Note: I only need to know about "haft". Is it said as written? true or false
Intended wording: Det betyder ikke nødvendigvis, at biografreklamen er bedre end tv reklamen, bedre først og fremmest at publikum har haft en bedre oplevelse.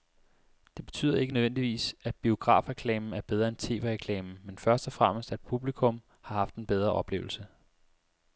true